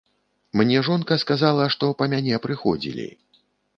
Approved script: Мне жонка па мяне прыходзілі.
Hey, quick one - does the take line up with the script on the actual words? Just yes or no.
no